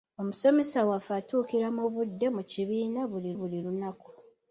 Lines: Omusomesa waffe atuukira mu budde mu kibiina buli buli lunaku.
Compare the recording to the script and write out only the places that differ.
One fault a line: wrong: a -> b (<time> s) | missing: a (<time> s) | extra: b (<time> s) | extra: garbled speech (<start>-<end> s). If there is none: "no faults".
no faults